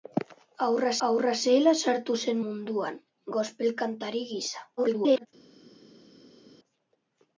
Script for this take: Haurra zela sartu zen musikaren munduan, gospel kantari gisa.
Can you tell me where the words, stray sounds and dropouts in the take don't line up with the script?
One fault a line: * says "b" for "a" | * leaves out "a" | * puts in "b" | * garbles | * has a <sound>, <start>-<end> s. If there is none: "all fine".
* puts in "haurra"
* leaves out "musikaren"
* garbles